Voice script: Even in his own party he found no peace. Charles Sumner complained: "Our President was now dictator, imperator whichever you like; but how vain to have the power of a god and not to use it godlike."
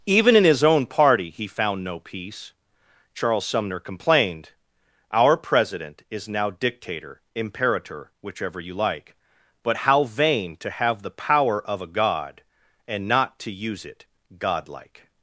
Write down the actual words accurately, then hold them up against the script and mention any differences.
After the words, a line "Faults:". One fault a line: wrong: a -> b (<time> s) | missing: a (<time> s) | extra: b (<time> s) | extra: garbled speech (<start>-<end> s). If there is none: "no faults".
Even in his own party he found no peace. Charles Sumner complained: "Our President is now dictator, imperator whichever you like; but how vain to have the power of a god and not to use it godlike."
Faults:
wrong: was -> is (6.1 s)